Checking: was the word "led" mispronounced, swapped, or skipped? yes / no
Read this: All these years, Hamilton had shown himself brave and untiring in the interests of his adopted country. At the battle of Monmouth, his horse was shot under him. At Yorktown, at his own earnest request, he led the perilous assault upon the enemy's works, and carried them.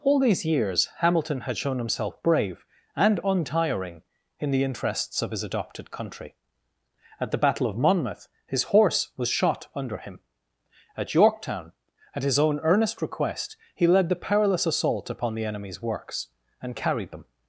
no